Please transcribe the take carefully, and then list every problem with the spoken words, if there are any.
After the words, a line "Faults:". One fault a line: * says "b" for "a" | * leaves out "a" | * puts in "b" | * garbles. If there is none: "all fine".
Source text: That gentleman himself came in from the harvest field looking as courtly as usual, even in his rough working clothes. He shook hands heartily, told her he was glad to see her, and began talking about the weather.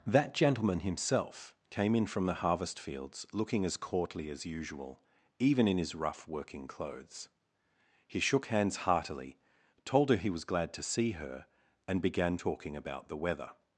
That gentleman himself came in from the harvest fields looking as courtly as usual, even in his rough working clothes. He shook hands heartily, told her he was glad to see her, and began talking about the weather.
Faults:
* says "fields" for "field"